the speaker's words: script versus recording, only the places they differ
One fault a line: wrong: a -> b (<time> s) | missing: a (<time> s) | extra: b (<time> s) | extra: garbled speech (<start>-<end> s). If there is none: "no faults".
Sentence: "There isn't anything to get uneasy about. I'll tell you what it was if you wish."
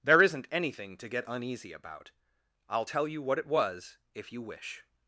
no faults